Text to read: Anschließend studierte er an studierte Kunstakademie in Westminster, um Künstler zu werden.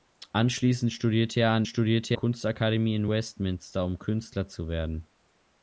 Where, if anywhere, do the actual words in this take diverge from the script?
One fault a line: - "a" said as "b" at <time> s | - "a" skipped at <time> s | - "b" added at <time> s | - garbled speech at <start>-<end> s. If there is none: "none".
none